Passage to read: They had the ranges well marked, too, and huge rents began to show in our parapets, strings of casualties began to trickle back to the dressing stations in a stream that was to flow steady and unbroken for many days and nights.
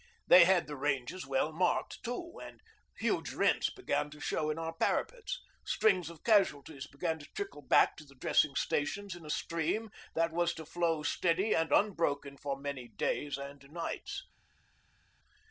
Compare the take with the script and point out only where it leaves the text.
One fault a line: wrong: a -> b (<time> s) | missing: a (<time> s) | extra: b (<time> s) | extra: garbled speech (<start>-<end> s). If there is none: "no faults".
no faults